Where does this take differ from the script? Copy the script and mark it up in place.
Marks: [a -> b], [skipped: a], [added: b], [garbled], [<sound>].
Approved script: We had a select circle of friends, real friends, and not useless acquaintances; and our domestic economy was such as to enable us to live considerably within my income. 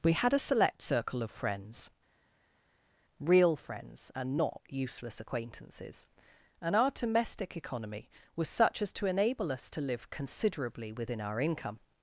We had a select circle of friends, real friends, and not useless acquaintances; and our domestic economy was such as to enable us to live considerably within [my -> our] income.